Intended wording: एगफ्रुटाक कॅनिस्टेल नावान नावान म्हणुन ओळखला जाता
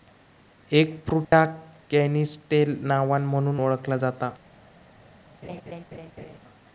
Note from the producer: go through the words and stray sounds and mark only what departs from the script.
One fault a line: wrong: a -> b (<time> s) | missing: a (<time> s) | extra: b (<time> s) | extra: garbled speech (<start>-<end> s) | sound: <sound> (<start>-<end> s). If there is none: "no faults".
sound: dropout (1.2-1.3 s)
missing: नावान (3.2 s)
sound: laugh (5.4-6.4 s)